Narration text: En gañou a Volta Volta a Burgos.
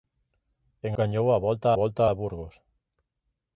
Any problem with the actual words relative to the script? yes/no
no